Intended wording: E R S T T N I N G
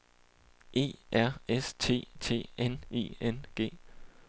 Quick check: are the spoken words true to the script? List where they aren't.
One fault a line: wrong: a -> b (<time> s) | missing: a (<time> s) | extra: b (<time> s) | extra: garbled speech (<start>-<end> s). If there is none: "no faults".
no faults